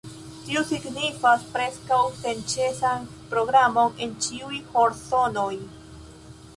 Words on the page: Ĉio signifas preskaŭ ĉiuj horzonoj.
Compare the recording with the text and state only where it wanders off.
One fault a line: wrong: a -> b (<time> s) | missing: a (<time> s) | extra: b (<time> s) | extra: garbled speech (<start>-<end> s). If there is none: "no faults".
wrong: Ĉio -> Tio (0.5 s)
extra: senĉesan programon en (2.2 s)